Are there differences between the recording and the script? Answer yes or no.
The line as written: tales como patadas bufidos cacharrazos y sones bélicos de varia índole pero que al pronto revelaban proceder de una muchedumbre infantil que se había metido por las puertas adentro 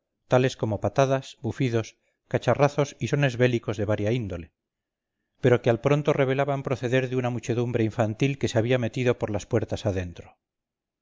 no